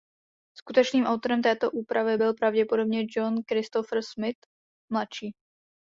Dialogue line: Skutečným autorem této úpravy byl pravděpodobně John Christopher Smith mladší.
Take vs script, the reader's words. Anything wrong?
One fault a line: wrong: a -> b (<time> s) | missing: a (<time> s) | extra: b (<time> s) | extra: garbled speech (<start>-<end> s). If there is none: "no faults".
no faults